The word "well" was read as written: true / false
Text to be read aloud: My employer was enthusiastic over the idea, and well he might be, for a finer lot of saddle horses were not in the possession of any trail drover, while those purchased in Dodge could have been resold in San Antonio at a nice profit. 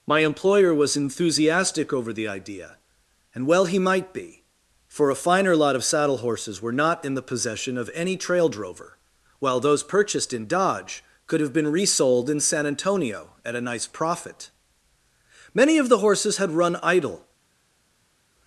true